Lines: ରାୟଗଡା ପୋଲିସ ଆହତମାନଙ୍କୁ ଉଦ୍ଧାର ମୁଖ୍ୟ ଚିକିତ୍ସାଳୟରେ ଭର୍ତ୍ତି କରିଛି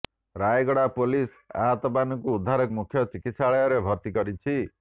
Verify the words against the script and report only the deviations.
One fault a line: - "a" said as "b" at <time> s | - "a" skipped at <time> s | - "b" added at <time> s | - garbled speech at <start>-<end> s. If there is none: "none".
none